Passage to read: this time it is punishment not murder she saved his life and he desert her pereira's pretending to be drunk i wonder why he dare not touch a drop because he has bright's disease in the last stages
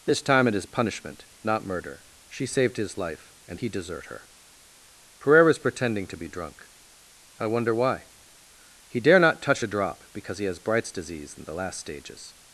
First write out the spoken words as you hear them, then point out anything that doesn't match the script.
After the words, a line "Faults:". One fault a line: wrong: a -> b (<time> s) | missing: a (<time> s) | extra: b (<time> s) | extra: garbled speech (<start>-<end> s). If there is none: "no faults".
this time it is punishment not murder she saved his life and he desert her pereira's pretending to be drunk i wonder why he dare not touch a drop because he has bright's disease in the last stages
Faults:
no faults